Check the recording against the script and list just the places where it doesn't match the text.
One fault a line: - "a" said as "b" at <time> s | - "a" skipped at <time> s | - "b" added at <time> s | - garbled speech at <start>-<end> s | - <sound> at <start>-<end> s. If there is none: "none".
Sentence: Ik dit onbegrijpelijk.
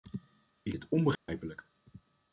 - dropout at 1.1-1.3 s